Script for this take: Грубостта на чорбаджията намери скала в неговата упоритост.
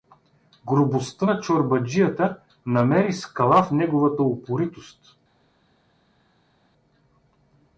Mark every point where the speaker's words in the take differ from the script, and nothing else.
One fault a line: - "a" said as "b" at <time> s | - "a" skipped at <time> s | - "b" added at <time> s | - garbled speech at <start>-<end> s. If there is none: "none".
none